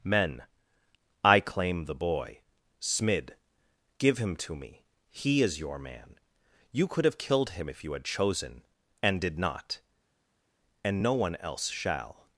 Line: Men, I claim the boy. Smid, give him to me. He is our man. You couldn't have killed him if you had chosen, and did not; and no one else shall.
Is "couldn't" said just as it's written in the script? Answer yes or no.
no